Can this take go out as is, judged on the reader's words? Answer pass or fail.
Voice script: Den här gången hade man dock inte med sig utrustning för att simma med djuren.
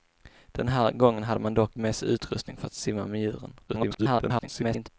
fail